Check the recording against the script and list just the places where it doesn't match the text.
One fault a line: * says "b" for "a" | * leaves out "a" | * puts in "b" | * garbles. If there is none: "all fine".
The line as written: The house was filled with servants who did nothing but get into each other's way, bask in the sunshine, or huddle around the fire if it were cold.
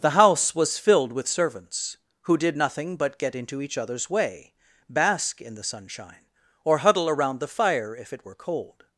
all fine